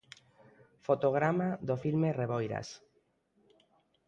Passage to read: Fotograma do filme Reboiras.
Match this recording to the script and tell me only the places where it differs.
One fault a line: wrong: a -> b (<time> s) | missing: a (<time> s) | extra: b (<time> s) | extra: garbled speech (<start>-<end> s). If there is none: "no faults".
no faults